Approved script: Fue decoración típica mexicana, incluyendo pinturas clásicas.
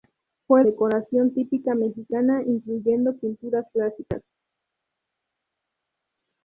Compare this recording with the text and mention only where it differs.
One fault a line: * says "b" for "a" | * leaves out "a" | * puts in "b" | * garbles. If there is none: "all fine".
all fine